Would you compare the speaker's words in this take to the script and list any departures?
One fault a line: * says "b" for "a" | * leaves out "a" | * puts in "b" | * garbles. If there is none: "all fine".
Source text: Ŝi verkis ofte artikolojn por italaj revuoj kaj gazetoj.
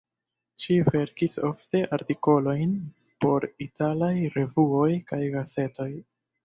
all fine